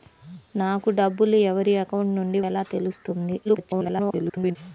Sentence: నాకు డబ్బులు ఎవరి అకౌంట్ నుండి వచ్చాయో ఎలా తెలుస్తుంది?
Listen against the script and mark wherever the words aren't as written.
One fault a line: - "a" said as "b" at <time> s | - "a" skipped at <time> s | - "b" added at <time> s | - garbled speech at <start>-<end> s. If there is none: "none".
- "వచ్చాయో" skipped at 2.4 s
- garbled speech at 3.4-4.6 s